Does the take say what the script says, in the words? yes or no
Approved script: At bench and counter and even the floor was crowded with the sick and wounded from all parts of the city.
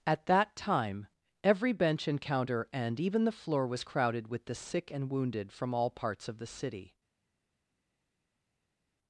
no